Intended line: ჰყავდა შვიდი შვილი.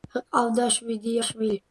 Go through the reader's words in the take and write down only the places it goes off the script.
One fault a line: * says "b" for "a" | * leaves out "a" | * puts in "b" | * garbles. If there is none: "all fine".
all fine